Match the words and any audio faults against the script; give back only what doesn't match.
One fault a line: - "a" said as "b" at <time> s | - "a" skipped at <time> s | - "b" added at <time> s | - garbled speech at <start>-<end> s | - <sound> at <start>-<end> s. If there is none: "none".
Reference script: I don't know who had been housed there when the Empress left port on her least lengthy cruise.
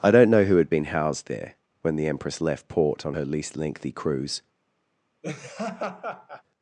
- laugh at 5.2-6.4 s